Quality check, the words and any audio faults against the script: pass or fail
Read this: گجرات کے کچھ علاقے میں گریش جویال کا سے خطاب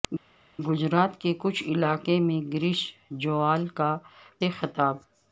pass